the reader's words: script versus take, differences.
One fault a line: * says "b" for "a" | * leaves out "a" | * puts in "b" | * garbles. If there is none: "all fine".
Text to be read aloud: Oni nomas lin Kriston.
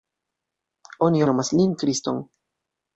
all fine